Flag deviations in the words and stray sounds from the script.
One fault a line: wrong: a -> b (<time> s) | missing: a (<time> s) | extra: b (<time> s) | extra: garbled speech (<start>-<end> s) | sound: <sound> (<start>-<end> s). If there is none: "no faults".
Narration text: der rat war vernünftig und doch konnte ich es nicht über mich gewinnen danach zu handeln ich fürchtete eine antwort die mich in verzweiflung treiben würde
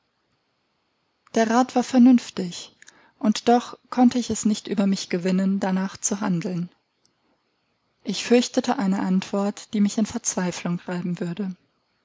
no faults